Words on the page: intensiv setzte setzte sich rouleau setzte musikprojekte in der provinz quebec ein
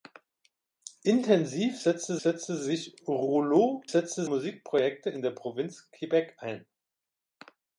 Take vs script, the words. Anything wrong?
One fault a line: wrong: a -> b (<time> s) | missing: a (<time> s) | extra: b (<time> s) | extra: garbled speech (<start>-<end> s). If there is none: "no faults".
no faults